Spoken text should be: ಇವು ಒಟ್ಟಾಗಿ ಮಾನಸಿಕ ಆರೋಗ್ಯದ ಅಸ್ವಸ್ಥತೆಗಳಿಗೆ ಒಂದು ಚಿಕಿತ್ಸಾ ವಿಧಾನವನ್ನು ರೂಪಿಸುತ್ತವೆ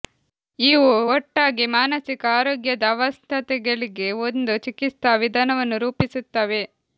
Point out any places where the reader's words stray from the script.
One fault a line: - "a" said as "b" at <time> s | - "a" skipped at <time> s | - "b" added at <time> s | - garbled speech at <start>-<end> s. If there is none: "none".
none